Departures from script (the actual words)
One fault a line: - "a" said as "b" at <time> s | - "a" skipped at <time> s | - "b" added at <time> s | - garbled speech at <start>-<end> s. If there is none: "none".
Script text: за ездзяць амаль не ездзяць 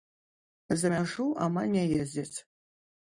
- "ездзяць" said as "мяжу" at 0.9 s